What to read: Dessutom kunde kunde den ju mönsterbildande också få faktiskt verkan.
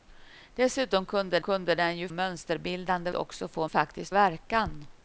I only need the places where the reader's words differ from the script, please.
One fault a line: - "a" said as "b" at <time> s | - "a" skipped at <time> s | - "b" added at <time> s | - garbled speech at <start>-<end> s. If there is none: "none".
none